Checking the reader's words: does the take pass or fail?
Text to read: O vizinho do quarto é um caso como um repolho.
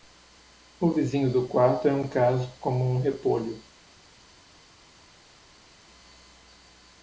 pass